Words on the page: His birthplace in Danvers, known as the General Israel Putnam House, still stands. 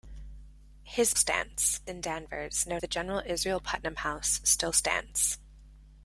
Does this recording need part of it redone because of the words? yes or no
yes